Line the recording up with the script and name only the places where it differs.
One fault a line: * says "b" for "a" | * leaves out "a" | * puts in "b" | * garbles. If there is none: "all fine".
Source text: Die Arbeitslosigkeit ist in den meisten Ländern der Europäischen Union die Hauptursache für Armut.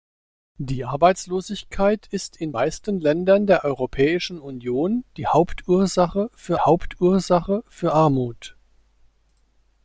* leaves out "den"
* puts in "Hauptursache für"